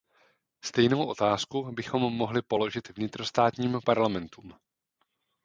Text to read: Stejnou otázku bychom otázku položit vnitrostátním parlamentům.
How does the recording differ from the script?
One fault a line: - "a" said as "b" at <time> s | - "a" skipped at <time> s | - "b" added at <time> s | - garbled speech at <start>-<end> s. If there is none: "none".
- "otázku" said as "mohli" at 2.0 s